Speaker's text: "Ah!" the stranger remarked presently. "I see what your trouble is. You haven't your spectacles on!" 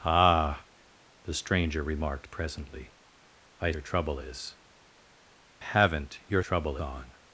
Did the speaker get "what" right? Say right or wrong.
wrong